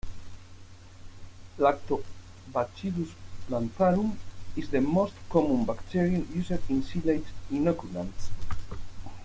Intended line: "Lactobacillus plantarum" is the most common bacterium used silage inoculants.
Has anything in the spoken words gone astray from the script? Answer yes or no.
yes